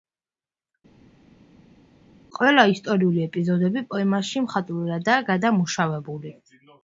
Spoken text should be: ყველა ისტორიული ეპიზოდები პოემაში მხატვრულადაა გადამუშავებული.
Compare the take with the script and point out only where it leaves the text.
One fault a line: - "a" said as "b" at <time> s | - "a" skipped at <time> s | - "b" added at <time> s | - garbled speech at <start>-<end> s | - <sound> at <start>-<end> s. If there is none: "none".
none